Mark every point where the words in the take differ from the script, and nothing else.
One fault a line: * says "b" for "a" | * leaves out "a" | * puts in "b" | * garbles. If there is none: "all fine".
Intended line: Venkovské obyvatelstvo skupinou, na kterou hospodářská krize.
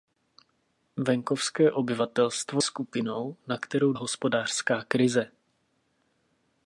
all fine